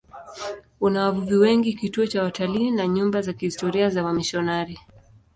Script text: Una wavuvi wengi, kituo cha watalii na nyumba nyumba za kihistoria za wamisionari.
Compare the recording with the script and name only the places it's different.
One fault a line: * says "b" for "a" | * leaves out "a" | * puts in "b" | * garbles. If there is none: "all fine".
* leaves out "nyumba"